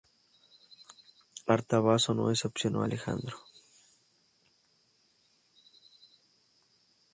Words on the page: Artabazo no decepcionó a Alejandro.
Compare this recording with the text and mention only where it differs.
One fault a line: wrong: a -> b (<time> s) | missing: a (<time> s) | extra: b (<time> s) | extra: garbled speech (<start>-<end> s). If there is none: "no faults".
no faults